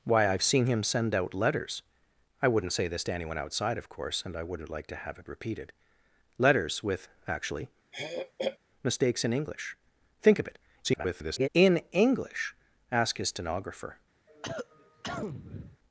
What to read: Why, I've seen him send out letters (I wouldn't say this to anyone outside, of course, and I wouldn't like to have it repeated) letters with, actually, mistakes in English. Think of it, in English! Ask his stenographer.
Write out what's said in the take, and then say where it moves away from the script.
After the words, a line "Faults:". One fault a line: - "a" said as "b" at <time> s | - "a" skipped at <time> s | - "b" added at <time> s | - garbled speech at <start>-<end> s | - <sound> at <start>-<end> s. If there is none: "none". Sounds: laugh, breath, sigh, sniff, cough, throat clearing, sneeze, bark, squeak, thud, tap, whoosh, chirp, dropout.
Why, I've seen him send out letters (I wouldn't say this to anyone outside, of course, and I wouldn't like to have it repeated) letters with, actually, mistakes in English. Think of it, [garbled] in English! Ask his stenographer.
Faults:
- throat clearing at 7.9-8.6 s
- garbled speech at 10.8-11.5 s
- cough at 14.3-15.8 s